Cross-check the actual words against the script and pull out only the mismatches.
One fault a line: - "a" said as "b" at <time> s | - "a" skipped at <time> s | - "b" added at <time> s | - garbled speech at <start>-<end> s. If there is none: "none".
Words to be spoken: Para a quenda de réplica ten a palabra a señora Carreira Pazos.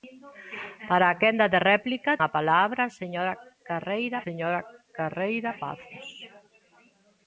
- "ten" skipped at 2.1 s
- "señora Carreira" added at 4.2 s